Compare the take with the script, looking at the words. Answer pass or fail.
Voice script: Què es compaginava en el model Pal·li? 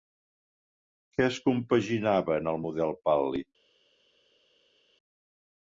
pass